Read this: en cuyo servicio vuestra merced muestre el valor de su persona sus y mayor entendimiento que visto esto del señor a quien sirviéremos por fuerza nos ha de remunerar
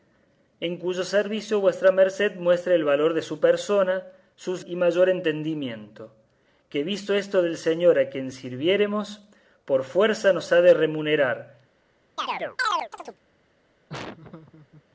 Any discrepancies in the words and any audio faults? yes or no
yes